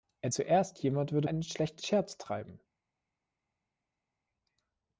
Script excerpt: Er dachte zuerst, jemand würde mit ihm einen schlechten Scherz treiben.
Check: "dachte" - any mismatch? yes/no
yes